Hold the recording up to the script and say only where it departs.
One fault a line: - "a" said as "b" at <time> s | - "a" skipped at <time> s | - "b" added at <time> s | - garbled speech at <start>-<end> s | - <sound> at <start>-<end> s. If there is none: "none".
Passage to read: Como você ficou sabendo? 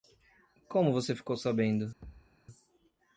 - thud at 2.0-2.4 s